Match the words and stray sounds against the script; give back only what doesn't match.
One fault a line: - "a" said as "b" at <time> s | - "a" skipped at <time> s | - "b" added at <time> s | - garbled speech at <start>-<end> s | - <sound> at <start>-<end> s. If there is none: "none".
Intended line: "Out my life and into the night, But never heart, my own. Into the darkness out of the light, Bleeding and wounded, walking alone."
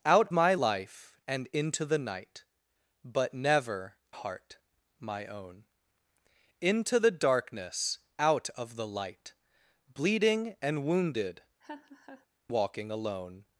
- laugh at 11.6-12.3 s